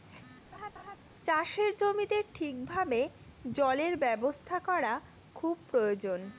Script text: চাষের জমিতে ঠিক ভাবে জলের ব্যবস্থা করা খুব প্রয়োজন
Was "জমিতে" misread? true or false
false